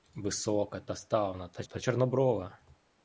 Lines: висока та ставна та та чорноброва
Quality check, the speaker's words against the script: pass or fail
pass